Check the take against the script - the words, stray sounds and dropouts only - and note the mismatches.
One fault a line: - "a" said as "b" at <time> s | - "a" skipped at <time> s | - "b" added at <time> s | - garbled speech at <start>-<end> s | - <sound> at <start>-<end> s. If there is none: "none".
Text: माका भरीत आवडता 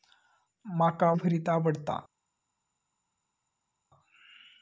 none